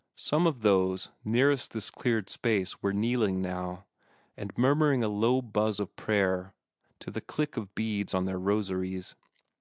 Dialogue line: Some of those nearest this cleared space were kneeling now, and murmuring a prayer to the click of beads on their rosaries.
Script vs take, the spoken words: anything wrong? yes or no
yes